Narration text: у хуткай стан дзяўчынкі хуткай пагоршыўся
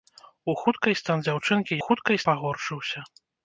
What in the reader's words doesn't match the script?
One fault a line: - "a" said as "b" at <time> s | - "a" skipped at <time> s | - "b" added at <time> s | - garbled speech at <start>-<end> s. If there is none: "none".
none